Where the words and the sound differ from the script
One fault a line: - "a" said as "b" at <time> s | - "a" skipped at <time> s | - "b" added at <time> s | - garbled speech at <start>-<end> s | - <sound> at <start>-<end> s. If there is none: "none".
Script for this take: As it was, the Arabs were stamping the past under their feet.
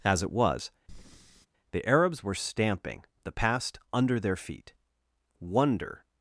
- breath at 0.9-1.5 s
- "Wonder" added at 5.4 s